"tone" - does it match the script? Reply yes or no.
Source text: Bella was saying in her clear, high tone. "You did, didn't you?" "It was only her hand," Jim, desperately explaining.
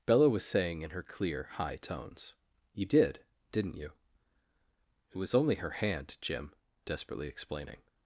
no